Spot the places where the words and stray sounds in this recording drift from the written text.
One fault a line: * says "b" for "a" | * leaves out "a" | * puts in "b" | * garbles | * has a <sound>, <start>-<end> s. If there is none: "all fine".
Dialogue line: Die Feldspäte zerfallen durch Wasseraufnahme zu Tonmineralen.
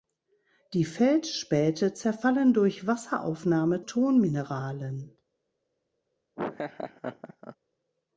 * leaves out "zu"
* has a laugh, 6.4-7.6 s